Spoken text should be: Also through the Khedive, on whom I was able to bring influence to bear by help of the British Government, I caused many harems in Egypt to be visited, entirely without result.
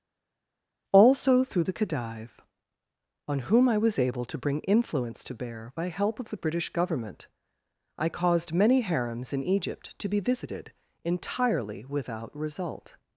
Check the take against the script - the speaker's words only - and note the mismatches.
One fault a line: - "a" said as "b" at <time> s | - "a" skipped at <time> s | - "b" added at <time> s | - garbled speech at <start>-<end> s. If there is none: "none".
none